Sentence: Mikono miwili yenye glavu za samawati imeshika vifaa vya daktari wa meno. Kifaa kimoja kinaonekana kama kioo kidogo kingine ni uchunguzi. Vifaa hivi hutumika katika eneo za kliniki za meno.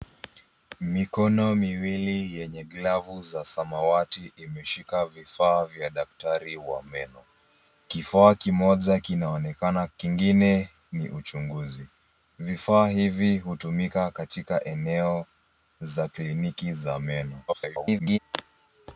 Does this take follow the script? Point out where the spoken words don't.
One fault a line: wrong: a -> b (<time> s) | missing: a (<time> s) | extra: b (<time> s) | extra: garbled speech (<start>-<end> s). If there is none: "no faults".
missing: kama kioo kidogo (9.9 s)
extra: garbled speech (17.5-18.2 s)